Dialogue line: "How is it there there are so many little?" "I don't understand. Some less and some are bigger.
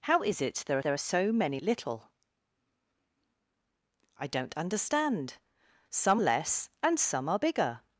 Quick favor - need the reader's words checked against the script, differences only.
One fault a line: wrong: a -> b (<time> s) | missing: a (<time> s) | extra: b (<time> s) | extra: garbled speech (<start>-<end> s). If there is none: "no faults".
no faults